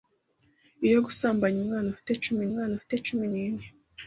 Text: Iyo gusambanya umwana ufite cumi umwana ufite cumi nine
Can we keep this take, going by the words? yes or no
yes